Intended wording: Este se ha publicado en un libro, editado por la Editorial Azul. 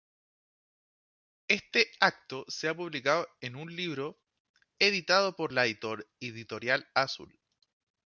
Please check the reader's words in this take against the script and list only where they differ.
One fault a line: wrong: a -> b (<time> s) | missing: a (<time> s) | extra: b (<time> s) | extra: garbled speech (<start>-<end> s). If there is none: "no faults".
extra: acto (2.0 s)